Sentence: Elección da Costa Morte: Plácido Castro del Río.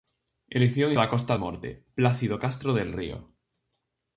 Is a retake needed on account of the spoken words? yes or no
no